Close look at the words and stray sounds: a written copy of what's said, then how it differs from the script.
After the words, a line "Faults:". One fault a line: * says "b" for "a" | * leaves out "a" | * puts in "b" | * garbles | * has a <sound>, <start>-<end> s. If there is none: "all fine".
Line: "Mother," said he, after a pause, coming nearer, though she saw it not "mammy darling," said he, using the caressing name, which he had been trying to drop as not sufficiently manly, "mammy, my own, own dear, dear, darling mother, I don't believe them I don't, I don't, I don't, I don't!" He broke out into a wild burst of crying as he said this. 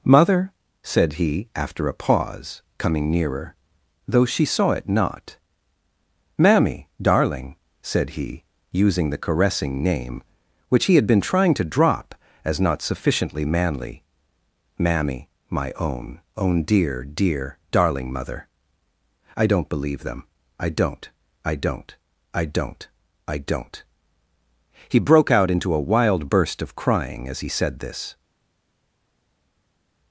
"Mother," said he, after a pause, coming nearer, though she saw it not "mammy darling," said he, using the caressing name, which he had been trying to drop as not sufficiently manly, "mammy, my own, own dear, dear, darling mother, I don't believe them I don't, I don't, I don't, I don't!" He broke out into a wild burst of crying as he said this.
Faults:
all fine